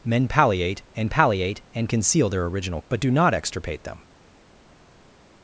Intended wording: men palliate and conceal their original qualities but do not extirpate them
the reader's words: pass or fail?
fail